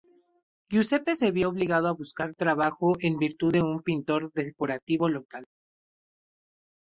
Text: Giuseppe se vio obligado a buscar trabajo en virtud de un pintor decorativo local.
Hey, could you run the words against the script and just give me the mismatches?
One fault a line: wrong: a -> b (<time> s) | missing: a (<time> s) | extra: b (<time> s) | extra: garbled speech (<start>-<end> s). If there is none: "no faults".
no faults